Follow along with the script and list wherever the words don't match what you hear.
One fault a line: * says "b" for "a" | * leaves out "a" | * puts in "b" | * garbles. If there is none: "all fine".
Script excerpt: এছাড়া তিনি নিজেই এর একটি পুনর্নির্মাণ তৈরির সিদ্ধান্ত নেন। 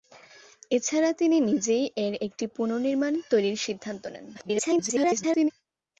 * garbles